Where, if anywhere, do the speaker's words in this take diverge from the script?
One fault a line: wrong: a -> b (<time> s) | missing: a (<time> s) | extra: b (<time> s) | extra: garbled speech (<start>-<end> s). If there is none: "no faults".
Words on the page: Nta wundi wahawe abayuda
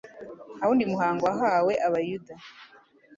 extra: muhango (0.9 s)